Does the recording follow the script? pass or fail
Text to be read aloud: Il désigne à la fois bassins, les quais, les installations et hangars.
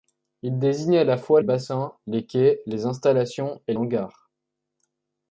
pass